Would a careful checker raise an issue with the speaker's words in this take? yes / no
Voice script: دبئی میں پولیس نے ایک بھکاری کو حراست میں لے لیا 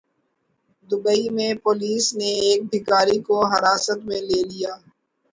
no